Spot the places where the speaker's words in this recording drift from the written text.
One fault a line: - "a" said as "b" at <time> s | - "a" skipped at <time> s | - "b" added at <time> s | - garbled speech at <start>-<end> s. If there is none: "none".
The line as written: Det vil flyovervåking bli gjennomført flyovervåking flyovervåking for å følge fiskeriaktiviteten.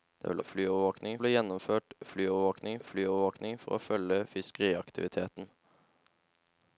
none